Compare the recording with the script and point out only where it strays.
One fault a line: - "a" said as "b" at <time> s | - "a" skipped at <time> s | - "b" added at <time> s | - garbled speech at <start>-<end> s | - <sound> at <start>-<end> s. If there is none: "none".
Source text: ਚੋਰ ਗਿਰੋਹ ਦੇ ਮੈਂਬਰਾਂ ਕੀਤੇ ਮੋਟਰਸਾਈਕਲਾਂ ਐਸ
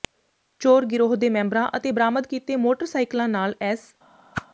- "ਅਤੇ ਬਰਾਮਦ" added at 1.8 s
- "ਨਾਲ" added at 3.3 s
- whoosh at 4.3-4.5 s